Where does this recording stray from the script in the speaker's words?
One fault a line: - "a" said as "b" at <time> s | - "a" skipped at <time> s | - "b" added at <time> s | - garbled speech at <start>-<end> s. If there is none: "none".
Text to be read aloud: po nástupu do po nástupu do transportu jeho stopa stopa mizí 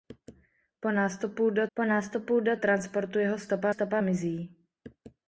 none